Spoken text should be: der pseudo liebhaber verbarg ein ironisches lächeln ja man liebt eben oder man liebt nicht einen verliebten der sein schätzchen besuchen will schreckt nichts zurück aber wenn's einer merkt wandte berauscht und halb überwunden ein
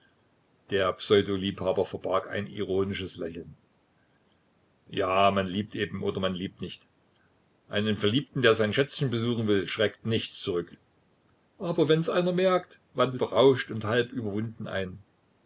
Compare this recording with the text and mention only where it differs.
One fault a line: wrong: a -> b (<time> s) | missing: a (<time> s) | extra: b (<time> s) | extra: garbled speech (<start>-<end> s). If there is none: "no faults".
no faults